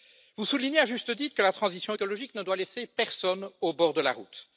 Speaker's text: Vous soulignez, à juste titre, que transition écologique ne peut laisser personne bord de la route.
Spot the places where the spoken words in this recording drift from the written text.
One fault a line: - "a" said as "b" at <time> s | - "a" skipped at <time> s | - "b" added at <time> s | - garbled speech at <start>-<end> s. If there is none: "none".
- "la" added at 1.4 s
- "peut" said as "doit" at 2.4 s
- "au" added at 3.6 s